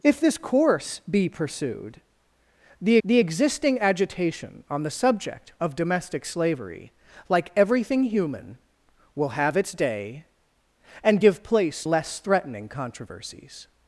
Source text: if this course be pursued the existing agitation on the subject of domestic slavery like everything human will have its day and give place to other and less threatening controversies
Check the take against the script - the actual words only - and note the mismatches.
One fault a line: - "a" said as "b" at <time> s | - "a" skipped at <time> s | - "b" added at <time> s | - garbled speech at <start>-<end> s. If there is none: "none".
- "the" added at 3.0 s
- "to other and" skipped at 11.9 s